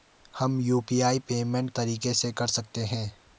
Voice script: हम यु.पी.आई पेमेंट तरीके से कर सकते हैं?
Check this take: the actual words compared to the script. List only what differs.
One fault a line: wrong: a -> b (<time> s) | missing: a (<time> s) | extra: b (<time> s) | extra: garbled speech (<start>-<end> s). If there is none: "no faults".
no faults